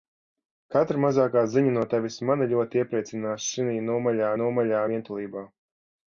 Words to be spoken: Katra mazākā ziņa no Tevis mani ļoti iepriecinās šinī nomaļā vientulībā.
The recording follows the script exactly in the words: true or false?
false